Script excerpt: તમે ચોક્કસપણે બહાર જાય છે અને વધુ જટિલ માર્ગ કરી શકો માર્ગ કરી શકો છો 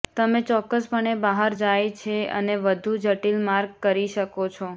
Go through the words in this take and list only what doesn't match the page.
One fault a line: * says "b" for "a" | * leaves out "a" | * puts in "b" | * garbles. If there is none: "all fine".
* leaves out "માર્ગ કરી શકો"